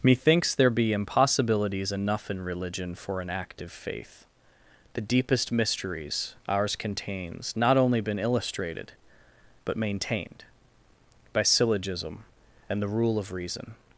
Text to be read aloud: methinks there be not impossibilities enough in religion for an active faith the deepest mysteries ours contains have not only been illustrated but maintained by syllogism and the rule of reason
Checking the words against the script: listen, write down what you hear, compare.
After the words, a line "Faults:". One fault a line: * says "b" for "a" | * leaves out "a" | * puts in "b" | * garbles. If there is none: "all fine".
methinks there be impossibilities enough in religion for an active faith the deepest mysteries ours contains not only been illustrated but maintained by syllogism and the rule of reason
Faults:
* leaves out "not"
* leaves out "have"